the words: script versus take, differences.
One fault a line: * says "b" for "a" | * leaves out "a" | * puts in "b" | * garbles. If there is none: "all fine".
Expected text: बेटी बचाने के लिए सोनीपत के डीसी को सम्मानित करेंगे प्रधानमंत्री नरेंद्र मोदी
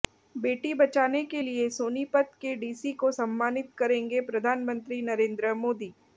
all fine